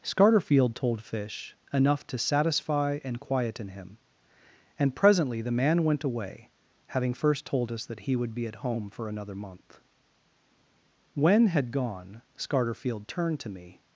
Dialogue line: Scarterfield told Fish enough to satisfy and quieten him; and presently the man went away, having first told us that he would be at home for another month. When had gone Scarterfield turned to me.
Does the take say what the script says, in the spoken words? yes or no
yes